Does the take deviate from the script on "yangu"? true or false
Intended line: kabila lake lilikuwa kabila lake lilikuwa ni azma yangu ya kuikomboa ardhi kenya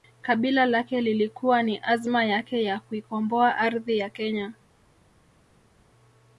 true